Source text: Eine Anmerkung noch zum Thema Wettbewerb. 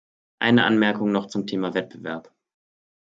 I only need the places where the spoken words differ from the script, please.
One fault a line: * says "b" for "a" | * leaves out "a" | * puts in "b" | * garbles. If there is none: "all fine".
all fine